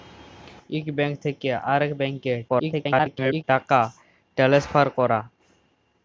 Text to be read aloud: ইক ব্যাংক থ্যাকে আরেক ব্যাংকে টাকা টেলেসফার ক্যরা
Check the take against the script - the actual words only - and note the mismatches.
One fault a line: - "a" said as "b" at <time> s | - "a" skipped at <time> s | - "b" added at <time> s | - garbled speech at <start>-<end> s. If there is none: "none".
- garbled speech at 2.5-3.4 s